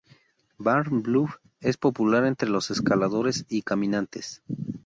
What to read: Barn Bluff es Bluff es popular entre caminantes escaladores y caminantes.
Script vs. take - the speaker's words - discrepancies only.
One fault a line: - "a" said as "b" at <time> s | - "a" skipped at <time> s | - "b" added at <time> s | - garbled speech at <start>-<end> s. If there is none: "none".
- "Bluff es" skipped at 1.8 s
- "caminantes" said as "los" at 2.5 s